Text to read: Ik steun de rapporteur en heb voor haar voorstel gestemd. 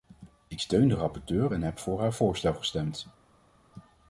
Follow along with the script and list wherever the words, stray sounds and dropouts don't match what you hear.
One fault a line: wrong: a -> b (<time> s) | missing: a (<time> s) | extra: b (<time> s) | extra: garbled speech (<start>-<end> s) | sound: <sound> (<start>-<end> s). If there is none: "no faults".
no faults